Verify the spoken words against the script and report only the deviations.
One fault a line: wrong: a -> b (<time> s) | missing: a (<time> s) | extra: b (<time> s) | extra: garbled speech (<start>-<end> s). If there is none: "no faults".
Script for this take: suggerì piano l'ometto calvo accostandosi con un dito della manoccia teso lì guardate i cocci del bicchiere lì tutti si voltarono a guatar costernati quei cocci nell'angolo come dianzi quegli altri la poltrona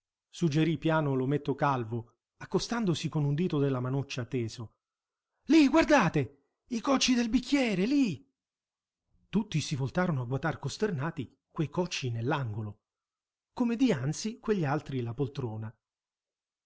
no faults